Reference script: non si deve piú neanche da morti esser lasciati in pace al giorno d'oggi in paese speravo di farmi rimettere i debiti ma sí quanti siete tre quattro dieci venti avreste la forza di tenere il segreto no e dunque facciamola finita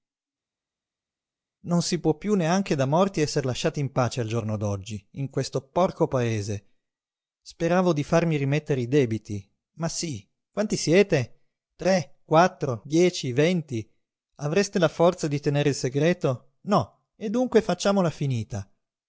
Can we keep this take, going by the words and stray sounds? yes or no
no